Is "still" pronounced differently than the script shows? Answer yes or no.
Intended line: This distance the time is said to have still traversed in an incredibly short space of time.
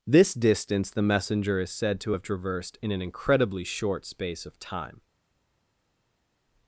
yes